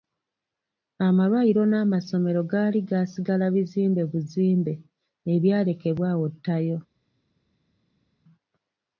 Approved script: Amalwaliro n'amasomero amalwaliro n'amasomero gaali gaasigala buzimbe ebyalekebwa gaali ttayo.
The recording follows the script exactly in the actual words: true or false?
false